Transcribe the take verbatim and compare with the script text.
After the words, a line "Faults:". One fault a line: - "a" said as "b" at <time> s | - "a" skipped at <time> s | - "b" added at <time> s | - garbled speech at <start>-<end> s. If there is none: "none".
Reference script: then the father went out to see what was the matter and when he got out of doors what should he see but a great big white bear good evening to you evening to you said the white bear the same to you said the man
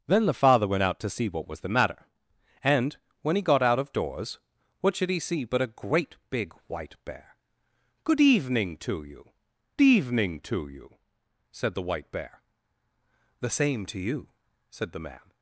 then the father went out to see what was the matter and when he got out of doors what should he see but a great big white bear good evening to you evening to you said the white bear the same to you said the man
Faults:
none